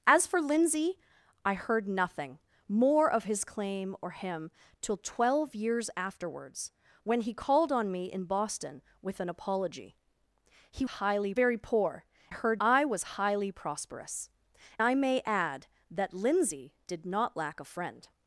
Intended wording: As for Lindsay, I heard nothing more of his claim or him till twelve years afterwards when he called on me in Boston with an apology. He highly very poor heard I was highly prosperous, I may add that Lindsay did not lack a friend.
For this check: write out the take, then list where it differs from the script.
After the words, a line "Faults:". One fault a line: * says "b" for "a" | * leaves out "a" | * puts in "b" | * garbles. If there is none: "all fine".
As for Lindsay, I heard nothing more of his claim or him till twelve years afterwards when he called on me in Boston with an apology. He highly very poor heard I was highly prosperous, I may add that Lindsay did not lack a friend.
Faults:
all fine